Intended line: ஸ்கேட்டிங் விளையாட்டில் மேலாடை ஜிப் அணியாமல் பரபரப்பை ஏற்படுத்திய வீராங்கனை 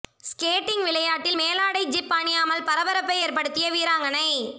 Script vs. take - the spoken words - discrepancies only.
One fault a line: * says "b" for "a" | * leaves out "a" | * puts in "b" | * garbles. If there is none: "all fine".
all fine